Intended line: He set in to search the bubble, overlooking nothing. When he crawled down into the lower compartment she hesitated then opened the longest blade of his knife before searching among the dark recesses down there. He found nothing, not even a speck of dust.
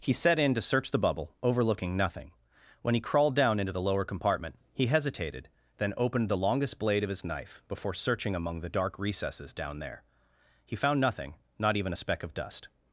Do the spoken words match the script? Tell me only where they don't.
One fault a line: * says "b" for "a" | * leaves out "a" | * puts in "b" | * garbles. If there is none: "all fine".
* says "he" for "she"